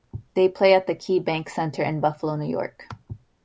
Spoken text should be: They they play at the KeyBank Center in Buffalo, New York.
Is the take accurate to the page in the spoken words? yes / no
no